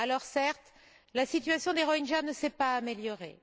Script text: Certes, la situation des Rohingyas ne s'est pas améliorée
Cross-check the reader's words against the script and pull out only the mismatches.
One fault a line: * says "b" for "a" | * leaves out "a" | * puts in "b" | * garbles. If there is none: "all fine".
all fine